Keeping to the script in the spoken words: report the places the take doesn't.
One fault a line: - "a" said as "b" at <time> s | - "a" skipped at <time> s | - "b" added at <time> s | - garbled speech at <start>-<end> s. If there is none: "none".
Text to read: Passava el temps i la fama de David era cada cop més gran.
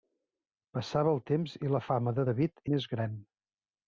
- "era cada cop" skipped at 2.6 s